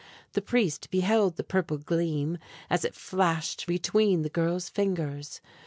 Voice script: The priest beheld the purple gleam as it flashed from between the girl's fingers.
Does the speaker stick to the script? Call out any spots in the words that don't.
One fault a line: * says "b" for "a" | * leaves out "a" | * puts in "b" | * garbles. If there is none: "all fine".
* leaves out "from"